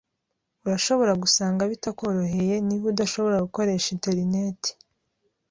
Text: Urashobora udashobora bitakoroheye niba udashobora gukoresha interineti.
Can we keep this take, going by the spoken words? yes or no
no